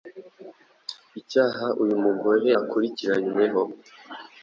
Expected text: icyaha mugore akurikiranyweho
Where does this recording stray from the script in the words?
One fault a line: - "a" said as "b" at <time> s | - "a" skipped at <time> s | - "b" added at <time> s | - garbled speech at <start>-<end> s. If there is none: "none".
- "uyu" added at 1.8 s